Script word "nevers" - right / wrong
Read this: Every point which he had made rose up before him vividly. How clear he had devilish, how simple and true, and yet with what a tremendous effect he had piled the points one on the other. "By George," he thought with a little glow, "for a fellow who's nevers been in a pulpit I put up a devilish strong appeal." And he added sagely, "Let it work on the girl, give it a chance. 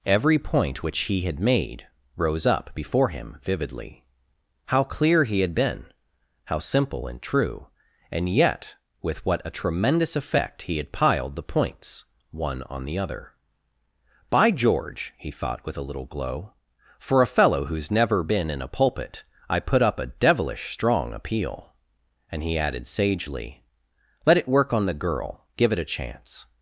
wrong